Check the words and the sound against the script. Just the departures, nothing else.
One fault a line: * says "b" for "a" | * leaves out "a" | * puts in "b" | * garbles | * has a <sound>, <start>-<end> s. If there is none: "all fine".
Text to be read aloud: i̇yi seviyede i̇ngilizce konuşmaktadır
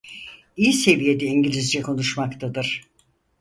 all fine